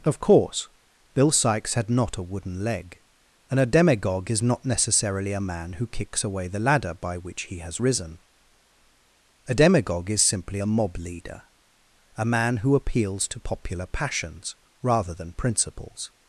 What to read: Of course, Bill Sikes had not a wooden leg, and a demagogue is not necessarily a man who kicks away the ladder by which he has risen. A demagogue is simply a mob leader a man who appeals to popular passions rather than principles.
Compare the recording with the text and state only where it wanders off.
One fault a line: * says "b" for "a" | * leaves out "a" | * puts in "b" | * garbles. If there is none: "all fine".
all fine